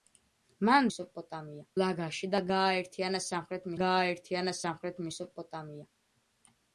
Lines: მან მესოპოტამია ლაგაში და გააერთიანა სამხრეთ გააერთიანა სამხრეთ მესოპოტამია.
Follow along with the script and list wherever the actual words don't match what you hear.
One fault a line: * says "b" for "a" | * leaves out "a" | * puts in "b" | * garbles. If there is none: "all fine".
all fine